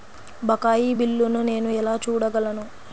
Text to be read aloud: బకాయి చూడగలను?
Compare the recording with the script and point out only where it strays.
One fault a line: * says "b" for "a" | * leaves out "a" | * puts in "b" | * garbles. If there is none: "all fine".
* puts in "బిల్లును నేను ఎలా"